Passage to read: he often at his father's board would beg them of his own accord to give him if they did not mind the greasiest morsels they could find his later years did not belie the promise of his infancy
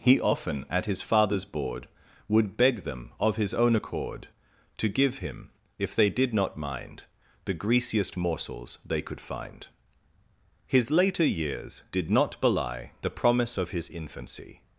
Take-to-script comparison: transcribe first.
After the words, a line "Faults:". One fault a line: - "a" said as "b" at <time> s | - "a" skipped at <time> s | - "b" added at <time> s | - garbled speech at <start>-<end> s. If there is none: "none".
he often at his father's board would beg them of his own accord to give him if they did not mind the greasiest morsels they could find his later years did not belie the promise of his infancy
Faults:
none